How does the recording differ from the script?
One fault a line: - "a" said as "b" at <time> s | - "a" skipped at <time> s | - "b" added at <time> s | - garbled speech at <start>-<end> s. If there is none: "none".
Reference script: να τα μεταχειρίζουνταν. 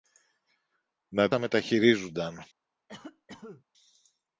none